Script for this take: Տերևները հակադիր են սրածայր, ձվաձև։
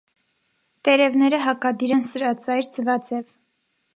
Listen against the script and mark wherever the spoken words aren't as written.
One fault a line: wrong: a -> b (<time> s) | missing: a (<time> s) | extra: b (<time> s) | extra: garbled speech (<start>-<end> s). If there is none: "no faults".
no faults